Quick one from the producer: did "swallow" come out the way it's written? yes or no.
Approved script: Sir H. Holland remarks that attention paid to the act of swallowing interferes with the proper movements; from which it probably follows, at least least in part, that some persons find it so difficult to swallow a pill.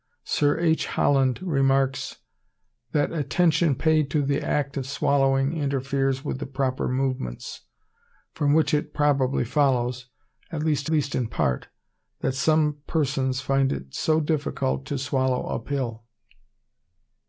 yes